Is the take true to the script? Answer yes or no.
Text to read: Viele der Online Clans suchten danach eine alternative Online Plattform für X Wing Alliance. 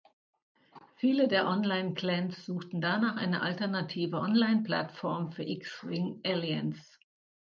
yes